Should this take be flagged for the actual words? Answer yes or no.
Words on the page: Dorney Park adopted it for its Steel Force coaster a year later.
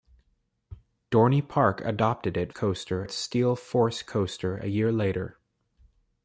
yes